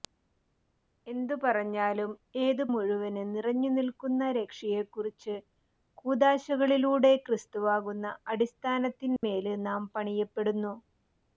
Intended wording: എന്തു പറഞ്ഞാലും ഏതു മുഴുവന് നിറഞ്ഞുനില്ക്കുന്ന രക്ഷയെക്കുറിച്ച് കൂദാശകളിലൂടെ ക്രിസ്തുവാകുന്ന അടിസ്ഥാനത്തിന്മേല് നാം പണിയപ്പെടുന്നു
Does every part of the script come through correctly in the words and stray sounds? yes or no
no